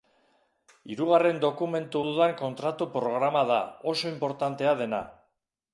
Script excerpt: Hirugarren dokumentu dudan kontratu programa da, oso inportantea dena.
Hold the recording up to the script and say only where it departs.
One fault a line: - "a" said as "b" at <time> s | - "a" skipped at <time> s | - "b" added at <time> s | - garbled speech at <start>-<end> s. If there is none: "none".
none